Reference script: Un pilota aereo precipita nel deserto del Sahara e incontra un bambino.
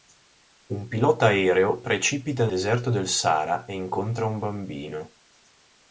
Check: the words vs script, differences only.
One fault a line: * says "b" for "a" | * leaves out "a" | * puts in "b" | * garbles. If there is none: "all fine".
* leaves out "nel"